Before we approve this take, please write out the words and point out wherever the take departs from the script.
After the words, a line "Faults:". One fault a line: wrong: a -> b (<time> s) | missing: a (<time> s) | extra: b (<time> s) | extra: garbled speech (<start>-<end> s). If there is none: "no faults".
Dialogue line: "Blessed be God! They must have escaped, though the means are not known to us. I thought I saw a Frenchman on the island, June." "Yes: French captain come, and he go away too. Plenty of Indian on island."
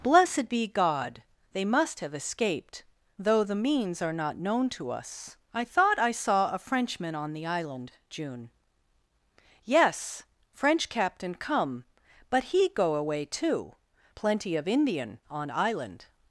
"Blessed be God! They must have escaped, though the means are not known to us. I thought I saw a Frenchman on the island, June." "Yes: French captain come, but he go away too. Plenty of Indian on island."
Faults:
wrong: and -> but (12.3 s)